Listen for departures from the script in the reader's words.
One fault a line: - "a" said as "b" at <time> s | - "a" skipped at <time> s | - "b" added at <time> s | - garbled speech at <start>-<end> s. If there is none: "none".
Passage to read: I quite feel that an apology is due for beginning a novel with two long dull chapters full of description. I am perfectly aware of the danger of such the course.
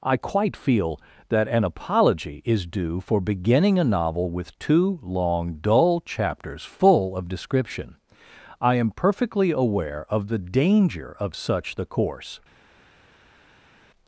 none